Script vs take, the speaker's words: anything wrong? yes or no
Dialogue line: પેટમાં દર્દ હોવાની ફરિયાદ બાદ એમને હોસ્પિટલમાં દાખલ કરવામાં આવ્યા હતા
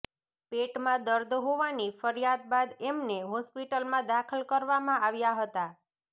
no